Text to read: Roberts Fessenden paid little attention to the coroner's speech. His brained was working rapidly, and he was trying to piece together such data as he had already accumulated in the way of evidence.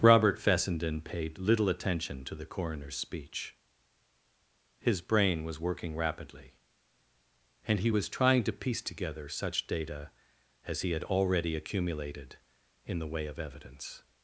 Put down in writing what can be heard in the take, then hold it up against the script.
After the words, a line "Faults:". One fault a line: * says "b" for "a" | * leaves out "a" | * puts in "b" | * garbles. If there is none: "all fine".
Robert Fessenden paid little attention to the coroner's speech. His brain was working rapidly, and he was trying to piece together such data as he had already accumulated in the way of evidence.
Faults:
* says "Robert" for "Roberts"
* says "brain" for "brained"